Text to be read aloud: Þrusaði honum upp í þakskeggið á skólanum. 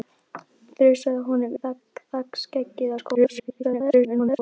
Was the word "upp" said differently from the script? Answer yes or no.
yes